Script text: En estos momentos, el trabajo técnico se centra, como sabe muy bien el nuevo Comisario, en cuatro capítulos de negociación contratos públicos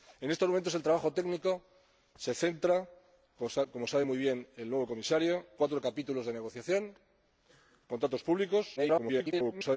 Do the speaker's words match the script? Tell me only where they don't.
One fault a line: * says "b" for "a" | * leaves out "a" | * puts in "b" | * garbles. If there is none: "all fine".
* leaves out "en"
* garbles